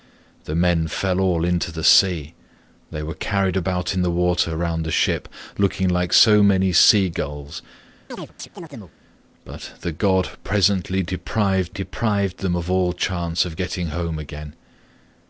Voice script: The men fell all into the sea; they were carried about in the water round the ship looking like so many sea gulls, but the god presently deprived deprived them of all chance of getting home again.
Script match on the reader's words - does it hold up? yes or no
yes